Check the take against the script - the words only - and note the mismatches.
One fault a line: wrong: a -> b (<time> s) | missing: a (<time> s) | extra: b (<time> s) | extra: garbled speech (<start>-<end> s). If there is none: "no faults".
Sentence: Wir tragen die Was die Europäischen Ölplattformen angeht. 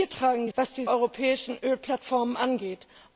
no faults